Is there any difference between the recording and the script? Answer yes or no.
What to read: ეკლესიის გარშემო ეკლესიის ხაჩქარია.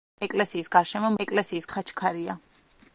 no